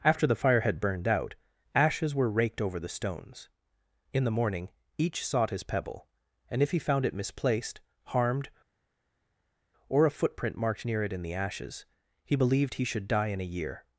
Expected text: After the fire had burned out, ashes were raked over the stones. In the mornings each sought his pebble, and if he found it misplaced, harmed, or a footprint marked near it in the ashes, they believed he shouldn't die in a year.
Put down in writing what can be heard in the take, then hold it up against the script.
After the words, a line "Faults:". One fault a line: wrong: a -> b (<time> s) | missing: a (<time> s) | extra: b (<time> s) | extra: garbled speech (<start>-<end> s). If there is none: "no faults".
After the fire had burned out, ashes were raked over the stones. In the morning each sought his pebble, and if he found it misplaced, harmed, or a footprint marked near it in the ashes, he believed he should die in a year.
Faults:
wrong: mornings -> morning (4.3 s)
wrong: they -> he (12.2 s)
wrong: shouldn't -> should (12.8 s)